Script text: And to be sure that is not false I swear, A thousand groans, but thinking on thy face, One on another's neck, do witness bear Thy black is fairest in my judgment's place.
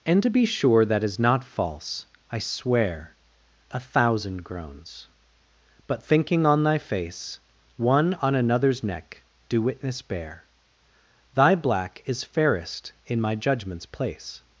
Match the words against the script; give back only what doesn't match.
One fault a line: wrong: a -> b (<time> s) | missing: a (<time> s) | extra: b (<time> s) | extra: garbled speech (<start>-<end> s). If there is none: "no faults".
no faults